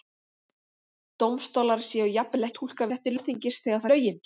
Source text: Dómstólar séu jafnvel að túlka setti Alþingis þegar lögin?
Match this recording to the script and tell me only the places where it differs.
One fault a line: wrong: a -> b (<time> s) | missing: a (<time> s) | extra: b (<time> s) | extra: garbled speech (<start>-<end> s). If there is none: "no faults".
no faults